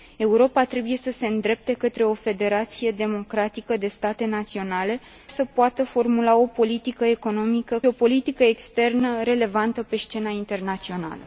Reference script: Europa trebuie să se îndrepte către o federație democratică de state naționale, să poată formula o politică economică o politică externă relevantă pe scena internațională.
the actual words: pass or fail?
pass